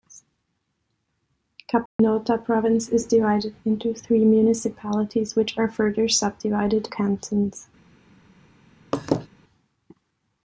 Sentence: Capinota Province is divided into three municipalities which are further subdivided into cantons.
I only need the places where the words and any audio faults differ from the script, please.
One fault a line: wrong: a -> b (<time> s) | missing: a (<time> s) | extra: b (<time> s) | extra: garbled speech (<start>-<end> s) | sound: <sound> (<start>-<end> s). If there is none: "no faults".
sound: dropout (1.9-2.0 s)
missing: into (6.9 s)
sound: laugh (8.9-9.3 s)